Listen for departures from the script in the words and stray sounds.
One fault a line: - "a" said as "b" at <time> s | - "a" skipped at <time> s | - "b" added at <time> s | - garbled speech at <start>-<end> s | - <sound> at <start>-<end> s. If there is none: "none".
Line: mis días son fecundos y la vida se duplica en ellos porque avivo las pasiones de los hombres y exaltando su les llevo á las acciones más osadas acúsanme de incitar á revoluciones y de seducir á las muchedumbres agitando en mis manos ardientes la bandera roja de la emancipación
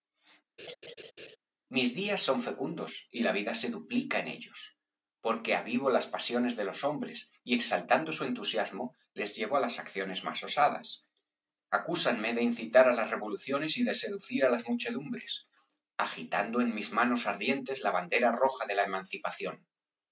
- laugh at 0.6-1.4 s
- "entusiasmo" added at 8.3 s
- "las" added at 12.9 s